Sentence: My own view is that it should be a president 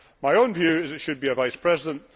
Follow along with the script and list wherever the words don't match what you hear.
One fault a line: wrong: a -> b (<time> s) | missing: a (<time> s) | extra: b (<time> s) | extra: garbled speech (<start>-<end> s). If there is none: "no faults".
extra: vice (1.3 s)